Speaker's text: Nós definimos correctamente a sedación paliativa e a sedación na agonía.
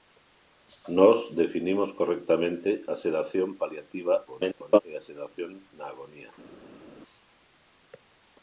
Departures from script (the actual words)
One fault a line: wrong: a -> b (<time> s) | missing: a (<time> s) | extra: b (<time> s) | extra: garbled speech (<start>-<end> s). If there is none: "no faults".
extra: garbled speech (4.3-4.8 s)